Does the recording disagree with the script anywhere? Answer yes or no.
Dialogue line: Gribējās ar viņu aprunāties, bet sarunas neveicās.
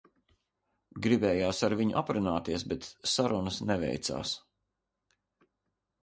no